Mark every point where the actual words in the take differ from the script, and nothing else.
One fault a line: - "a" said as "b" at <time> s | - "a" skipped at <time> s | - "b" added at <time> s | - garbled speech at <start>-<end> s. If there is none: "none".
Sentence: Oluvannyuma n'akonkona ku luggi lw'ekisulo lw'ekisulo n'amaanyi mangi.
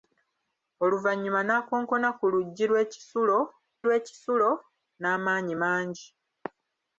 none